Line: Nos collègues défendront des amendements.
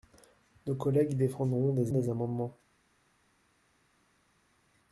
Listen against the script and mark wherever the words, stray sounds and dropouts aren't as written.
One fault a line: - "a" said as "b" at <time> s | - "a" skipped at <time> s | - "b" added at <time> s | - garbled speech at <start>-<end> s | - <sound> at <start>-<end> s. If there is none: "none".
- "des" added at 1.9 s